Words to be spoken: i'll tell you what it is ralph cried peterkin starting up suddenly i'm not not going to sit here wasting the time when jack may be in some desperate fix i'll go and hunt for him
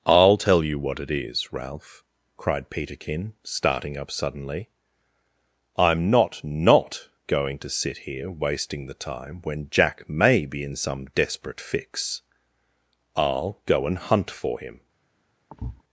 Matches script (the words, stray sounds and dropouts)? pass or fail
fail